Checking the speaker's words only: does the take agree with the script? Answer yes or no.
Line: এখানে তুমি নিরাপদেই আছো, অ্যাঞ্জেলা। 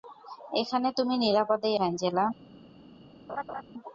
no